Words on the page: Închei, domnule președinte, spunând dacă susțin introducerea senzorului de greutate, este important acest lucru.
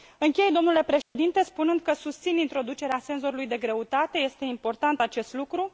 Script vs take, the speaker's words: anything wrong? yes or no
yes